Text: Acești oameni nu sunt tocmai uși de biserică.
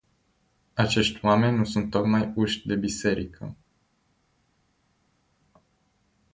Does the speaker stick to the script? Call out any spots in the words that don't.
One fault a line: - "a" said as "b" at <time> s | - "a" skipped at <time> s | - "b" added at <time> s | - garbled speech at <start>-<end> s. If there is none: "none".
none